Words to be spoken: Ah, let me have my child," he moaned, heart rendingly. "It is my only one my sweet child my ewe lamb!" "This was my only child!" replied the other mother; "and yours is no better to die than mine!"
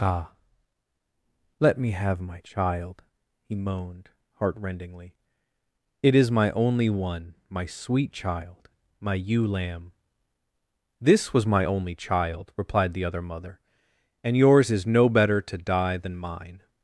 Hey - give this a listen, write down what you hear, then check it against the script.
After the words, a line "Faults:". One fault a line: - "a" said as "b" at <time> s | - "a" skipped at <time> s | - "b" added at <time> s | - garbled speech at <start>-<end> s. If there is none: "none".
Ah, let me have my child," he moaned, heart rendingly. "It is my only one my sweet child my ewe lamb!" "This was my only child!" replied the other mother; "and yours is no better to die than mine!"
Faults:
none